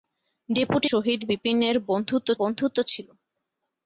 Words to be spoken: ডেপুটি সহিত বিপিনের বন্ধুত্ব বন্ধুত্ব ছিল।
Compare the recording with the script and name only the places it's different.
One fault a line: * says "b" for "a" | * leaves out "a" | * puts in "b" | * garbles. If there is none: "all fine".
all fine